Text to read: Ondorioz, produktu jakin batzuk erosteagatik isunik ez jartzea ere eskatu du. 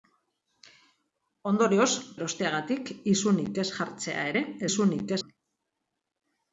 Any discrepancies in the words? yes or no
yes